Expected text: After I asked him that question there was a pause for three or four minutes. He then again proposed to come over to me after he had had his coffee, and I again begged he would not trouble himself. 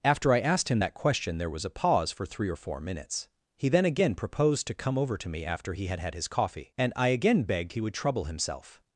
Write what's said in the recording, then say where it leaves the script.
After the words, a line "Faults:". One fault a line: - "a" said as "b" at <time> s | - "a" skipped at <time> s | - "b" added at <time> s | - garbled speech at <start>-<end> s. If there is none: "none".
After I asked him that question there was a pause for three or four minutes. He then again proposed to come over to me after he had had his coffee, and I again begged he would trouble himself.
Faults:
- "not" skipped at 7.9 s